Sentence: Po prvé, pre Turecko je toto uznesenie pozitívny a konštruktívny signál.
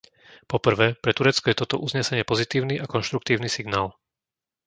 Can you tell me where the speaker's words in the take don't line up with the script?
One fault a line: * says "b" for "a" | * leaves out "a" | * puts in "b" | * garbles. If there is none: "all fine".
all fine